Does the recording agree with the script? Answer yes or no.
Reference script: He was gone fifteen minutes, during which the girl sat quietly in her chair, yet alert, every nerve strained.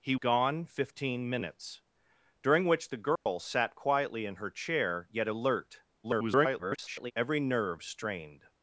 no